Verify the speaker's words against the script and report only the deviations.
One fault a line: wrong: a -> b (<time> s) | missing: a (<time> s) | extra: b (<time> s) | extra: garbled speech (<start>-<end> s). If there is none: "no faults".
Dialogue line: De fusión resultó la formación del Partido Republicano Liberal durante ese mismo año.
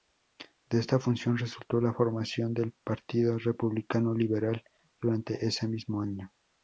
extra: esta (0.8 s)